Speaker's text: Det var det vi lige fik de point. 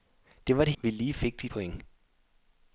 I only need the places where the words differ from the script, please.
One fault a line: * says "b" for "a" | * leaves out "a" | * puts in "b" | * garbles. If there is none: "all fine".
all fine